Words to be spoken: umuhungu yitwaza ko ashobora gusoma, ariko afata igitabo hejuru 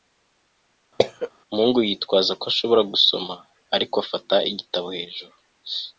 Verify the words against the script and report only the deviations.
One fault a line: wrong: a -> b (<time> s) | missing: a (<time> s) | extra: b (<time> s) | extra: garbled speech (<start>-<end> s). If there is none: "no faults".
no faults